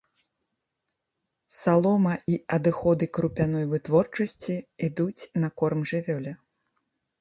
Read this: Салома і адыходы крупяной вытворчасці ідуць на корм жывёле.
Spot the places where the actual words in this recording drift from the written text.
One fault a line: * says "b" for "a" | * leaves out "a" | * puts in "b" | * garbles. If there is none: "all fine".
all fine